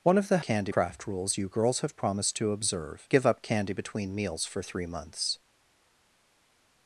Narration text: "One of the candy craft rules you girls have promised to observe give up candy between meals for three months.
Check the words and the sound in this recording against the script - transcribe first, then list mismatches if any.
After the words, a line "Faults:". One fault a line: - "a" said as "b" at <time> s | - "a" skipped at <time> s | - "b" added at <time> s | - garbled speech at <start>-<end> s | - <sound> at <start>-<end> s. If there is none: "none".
"One of the candy craft rules you girls have promised to observe give up candy between meals for three months.
Faults:
none